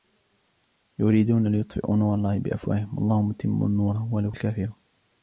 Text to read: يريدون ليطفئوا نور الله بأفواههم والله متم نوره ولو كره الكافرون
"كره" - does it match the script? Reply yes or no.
no